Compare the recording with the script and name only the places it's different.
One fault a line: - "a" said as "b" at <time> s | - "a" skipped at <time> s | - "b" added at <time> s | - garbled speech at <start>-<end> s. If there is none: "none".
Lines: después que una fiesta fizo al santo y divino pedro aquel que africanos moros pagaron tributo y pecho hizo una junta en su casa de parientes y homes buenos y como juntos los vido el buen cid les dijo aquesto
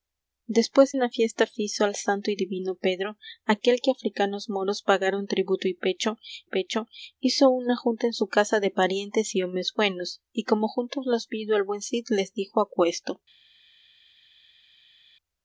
- "que" skipped at 0.9 s
- "pecho" added at 6.5 s